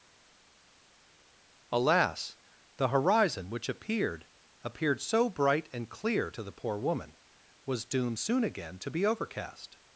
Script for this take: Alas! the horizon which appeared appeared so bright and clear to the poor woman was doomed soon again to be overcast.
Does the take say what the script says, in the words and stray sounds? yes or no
yes